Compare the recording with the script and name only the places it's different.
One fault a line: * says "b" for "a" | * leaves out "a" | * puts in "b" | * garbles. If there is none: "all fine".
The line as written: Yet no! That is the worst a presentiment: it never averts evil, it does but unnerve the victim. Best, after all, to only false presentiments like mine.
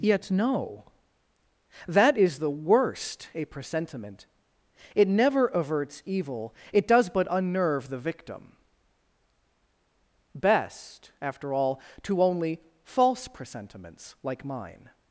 all fine